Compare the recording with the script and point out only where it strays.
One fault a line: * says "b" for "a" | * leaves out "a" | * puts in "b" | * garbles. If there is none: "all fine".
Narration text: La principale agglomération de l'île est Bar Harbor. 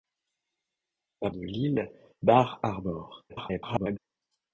* leaves out "principale agglomération"
* leaves out "est"
* garbles